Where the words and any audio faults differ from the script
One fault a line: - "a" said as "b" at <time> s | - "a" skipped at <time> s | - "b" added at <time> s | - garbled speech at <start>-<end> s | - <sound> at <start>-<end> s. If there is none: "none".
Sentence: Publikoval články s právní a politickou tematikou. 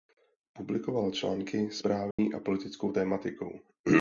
- dropout at 2.1-2.2 s